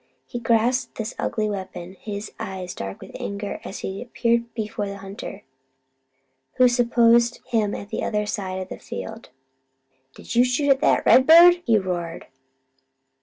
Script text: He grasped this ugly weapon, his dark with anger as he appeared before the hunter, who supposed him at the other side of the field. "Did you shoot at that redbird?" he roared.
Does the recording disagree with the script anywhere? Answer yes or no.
yes